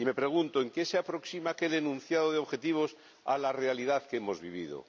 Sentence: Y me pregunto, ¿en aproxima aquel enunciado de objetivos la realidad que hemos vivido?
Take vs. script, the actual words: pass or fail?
fail